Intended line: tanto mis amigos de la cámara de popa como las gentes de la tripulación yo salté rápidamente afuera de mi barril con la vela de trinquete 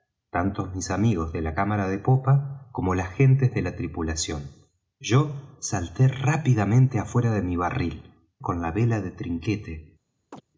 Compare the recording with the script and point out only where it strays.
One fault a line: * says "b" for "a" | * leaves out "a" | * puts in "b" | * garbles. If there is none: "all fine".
all fine